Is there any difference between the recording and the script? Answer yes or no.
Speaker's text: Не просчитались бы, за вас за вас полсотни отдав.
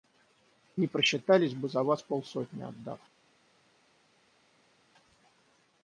yes